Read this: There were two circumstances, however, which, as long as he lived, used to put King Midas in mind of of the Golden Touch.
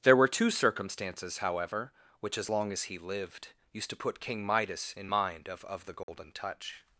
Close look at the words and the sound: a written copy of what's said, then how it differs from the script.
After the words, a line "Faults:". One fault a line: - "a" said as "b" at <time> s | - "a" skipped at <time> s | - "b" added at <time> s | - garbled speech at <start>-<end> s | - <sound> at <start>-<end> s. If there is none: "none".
There were two circumstances, however, which, as long as he lived, used to put King Midas in mind of of the Golden Touch.
Faults:
- dropout at 6.0-6.1 s